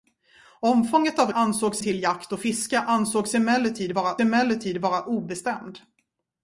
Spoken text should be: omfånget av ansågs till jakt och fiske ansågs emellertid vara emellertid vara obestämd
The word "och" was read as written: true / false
true